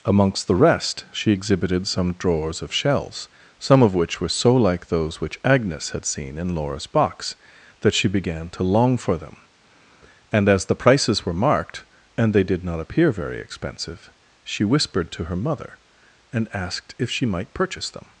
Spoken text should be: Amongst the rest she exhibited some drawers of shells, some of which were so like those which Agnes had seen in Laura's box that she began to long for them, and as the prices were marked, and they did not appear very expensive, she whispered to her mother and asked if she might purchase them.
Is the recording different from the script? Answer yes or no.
no